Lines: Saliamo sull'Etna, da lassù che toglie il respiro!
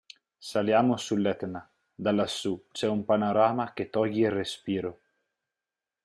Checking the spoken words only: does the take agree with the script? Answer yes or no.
no